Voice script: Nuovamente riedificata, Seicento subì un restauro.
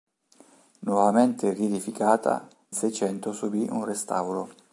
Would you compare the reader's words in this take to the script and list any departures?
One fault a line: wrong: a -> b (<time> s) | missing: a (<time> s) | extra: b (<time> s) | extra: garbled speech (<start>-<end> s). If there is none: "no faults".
no faults